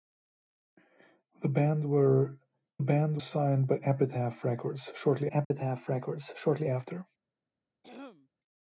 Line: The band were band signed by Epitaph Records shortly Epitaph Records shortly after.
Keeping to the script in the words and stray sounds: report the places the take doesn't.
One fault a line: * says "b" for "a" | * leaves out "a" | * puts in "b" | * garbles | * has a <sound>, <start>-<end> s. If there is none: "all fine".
* has a dropout, 5.4-5.5 s
* has a throat clearing, 7.8-8.3 s